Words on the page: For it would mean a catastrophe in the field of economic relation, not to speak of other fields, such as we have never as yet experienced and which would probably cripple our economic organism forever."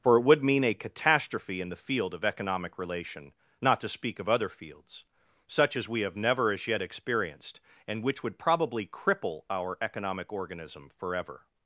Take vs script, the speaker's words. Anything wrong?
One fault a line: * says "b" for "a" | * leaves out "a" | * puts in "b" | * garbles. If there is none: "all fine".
all fine